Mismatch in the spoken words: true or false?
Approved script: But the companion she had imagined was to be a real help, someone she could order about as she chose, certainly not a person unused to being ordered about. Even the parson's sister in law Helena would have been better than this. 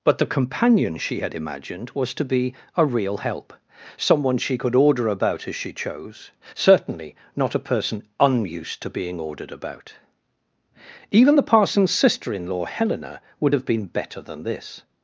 false